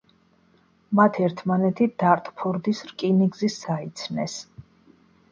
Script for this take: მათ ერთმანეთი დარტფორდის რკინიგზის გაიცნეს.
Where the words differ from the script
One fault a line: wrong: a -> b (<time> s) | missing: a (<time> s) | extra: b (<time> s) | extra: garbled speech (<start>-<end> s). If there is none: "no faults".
no faults